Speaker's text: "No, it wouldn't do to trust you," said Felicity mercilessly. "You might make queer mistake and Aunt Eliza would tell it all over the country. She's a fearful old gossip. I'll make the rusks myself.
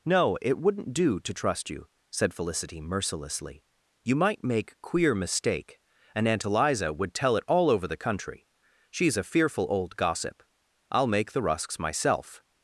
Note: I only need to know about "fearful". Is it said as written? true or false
true